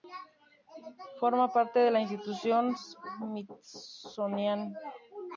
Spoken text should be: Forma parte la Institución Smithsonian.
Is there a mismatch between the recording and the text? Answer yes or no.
yes